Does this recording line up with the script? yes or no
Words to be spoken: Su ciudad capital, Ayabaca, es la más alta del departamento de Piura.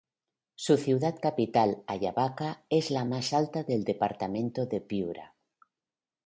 yes